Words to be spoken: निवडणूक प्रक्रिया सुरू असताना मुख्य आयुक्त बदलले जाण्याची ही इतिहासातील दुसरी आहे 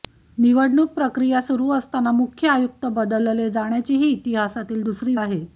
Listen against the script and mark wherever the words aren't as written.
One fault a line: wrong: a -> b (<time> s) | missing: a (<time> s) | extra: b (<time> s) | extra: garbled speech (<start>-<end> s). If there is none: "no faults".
no faults